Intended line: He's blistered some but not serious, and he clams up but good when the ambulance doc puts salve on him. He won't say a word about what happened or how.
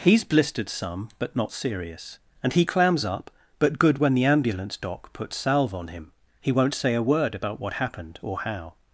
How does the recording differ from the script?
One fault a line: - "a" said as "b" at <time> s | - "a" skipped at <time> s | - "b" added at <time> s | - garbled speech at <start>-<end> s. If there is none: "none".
none